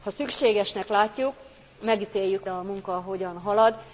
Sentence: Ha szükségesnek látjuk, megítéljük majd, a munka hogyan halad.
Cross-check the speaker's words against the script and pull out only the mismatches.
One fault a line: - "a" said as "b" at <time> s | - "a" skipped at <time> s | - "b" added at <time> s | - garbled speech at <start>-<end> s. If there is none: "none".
- "majd" skipped at 2.5 s